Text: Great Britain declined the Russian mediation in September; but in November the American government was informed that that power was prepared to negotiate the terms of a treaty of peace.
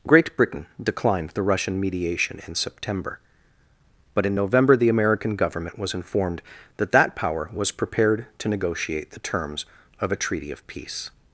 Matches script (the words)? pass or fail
pass